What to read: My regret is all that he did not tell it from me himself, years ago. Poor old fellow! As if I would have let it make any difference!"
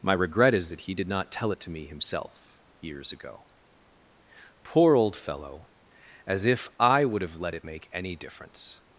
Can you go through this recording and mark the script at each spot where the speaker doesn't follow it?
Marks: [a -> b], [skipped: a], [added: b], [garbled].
My regret is [skipped: all] that he did not tell it [from -> to] me himself, years ago. Poor old fellow! As if I would have let it make any difference!"